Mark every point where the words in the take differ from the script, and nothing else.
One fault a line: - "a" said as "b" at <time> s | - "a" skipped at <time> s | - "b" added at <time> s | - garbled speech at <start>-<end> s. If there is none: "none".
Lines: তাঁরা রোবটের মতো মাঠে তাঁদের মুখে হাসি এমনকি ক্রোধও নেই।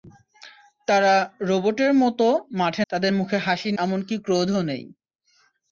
none